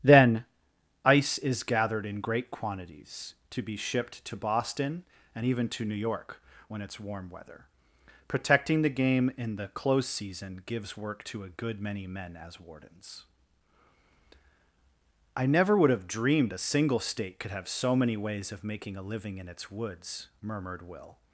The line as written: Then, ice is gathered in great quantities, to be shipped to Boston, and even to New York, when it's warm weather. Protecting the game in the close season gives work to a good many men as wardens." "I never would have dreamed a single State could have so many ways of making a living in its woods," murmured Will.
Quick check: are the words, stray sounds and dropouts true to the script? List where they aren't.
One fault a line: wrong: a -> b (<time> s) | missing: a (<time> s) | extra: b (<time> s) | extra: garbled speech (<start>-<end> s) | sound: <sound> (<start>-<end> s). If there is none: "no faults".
no faults